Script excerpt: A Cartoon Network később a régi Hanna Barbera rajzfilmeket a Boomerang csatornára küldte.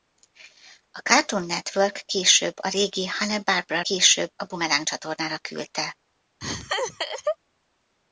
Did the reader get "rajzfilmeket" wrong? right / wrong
wrong